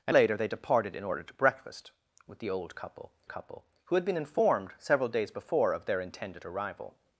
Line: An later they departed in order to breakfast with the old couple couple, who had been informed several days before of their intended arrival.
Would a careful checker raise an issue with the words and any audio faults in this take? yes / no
no